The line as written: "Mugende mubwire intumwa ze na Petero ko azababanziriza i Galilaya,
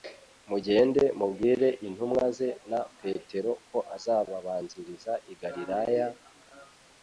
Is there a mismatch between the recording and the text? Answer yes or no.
no